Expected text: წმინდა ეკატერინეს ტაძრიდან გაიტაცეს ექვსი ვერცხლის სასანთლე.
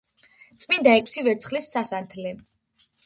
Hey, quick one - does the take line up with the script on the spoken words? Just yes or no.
no